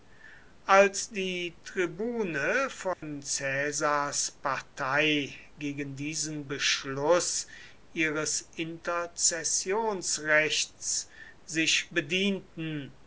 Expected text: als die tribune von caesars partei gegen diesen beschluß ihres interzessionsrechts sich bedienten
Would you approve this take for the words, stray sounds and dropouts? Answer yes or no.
no